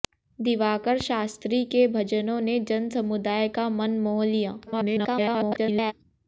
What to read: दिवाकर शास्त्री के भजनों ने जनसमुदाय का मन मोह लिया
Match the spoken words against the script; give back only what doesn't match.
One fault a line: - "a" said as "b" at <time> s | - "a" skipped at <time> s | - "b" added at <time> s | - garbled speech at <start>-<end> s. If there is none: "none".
- garbled speech at 4.7-5.9 s